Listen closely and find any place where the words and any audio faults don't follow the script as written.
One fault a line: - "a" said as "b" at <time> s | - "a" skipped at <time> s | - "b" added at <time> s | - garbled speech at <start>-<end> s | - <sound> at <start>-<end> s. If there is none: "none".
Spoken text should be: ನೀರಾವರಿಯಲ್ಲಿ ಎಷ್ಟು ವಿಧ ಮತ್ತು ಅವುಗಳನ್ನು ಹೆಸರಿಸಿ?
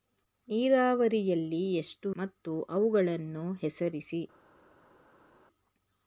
- "ವಿಧ" skipped at 2.1 s